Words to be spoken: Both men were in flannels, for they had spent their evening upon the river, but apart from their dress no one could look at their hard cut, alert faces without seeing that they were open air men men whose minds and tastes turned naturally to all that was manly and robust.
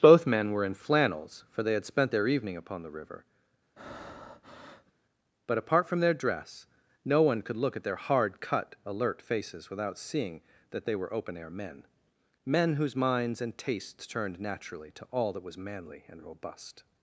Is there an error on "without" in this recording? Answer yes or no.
no